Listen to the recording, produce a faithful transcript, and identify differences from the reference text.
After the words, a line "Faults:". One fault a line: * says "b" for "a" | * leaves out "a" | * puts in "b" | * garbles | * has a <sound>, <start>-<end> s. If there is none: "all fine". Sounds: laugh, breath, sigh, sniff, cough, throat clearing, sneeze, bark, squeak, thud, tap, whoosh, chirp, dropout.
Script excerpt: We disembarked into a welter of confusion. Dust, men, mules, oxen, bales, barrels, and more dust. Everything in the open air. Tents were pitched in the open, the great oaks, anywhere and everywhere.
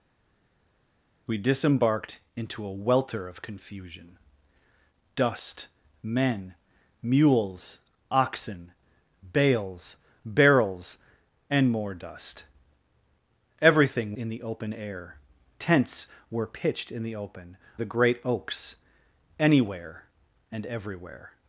We disembarked into a welter of confusion. Dust, men, mules, oxen, bales, barrels, and more dust. Everything in the open air. Tents were pitched in the open, the great oaks, anywhere and everywhere.
Faults:
all fine